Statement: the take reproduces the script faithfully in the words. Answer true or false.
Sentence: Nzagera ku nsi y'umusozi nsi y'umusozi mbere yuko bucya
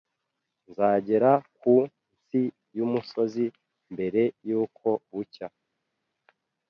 false